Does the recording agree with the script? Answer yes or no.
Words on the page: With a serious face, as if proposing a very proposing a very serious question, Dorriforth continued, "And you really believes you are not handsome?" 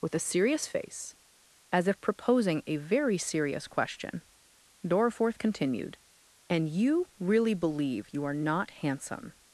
no